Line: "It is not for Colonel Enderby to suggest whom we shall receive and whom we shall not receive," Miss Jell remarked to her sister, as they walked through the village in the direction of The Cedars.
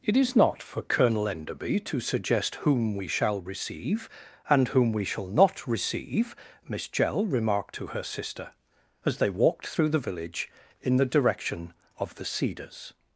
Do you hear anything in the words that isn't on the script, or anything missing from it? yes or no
no